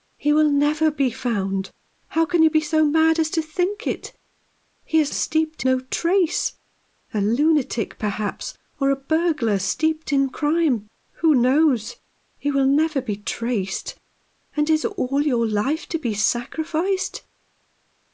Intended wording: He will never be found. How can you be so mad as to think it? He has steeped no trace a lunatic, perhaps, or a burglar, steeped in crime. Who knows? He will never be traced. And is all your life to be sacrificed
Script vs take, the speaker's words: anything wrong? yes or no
no